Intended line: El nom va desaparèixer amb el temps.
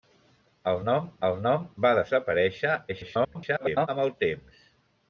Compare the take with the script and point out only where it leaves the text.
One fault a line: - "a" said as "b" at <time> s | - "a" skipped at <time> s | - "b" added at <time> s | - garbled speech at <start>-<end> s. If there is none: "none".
- "el nom" added at 1.3 s
- garbled speech at 2.9-3.9 s